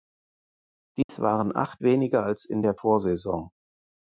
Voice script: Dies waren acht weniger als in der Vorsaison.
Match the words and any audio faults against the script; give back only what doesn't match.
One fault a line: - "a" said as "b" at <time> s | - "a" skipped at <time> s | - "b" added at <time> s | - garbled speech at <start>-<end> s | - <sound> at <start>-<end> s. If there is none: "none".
- dropout at 1.0-1.1 s